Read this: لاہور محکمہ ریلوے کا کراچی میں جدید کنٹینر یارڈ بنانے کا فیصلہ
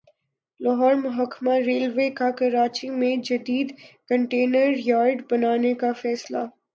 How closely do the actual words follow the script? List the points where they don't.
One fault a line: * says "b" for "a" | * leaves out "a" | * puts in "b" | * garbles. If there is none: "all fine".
all fine